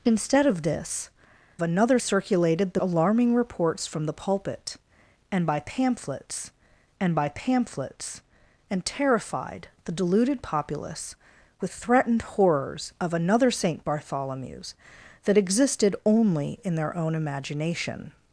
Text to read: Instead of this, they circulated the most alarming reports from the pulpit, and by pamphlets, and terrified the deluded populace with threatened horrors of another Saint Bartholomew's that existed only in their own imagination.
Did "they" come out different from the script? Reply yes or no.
yes